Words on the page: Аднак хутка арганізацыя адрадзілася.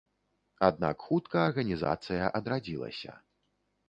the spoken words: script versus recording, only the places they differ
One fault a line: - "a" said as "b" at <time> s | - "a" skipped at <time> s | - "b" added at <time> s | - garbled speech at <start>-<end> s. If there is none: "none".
none